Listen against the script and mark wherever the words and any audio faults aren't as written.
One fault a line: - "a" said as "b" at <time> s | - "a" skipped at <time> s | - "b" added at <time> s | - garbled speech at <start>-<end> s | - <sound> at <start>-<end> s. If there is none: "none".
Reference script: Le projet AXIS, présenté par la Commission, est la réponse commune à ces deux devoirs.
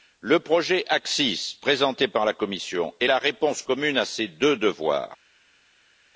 none